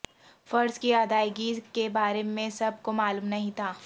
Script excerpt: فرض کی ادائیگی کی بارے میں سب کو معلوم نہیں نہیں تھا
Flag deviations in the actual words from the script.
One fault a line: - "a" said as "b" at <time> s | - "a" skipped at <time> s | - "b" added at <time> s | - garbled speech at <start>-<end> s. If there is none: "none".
- "کی" said as "کے" at 1.7 s
- "نہیں" skipped at 3.5 s